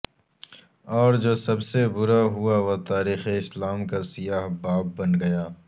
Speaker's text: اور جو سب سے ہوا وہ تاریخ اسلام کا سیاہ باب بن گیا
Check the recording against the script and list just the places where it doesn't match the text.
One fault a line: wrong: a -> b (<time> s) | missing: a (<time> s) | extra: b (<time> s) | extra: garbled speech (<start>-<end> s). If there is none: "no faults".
extra: برا (1.9 s)